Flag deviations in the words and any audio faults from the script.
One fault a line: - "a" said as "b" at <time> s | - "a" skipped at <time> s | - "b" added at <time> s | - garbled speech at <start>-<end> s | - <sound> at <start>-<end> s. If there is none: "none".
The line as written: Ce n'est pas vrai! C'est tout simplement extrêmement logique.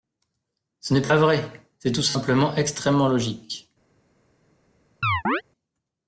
- chirp at 5.0-5.4 s